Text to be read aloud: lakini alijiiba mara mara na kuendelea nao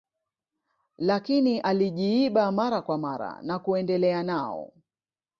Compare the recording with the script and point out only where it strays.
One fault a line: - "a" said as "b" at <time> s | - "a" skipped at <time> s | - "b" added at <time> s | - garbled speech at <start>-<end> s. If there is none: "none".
- "kwa" added at 2.8 s